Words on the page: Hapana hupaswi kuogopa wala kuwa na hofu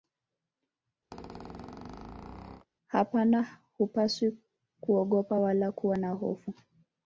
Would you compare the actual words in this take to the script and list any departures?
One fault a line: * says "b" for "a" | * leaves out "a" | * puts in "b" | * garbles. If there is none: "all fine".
all fine